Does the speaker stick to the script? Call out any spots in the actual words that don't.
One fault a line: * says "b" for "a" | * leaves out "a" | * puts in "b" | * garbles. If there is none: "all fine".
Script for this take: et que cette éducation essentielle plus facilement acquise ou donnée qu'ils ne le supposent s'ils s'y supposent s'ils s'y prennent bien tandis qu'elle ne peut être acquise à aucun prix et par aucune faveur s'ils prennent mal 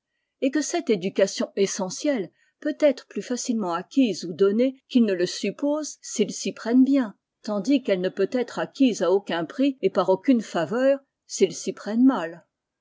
* puts in "peut être"
* leaves out "supposent s'ils s'y"
* puts in "s'y"